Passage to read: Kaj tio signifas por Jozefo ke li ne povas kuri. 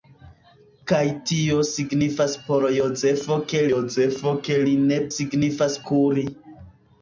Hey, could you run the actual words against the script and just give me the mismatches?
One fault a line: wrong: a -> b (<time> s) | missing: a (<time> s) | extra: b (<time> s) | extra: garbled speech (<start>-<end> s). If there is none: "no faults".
extra: Jozefo ke (3.7 s)
wrong: povas -> signifas (5.1 s)